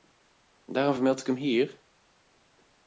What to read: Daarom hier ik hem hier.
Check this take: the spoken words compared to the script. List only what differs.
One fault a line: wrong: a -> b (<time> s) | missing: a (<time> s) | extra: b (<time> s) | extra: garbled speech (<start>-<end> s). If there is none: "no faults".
wrong: hier -> vermeld (0.9 s)